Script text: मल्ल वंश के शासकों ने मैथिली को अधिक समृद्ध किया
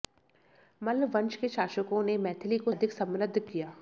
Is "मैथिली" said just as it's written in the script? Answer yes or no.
yes